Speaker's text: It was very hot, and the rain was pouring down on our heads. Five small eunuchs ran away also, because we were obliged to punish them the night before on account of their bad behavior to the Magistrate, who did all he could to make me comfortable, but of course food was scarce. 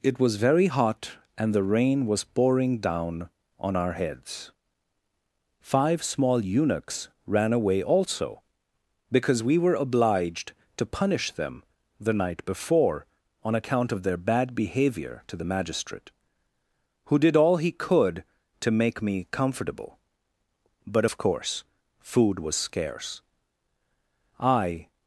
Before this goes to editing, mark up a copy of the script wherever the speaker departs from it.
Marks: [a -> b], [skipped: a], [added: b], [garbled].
It was very hot, and the rain was pouring down on our heads. Five small eunuchs ran away also, because we were obliged to punish them the night before on account of their bad behavior to the Magistrate, who did all he could to make me comfortable, but of course food was scarce. [added: I]